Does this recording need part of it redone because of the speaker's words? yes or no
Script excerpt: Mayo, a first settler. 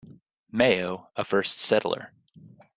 no